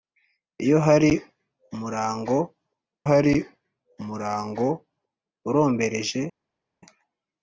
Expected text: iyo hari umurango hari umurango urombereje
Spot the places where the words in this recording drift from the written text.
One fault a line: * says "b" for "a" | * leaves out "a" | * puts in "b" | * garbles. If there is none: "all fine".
all fine